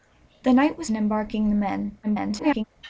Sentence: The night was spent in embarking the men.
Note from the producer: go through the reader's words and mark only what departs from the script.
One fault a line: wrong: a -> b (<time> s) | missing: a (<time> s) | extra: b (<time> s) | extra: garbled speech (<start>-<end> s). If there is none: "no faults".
missing: spent (0.9 s)
extra: garbled speech (2.0-2.6 s)